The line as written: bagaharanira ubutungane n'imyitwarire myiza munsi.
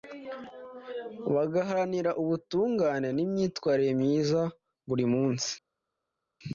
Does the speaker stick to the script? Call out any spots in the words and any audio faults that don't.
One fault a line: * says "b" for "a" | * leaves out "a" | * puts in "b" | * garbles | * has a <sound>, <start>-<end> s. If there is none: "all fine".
* puts in "buri"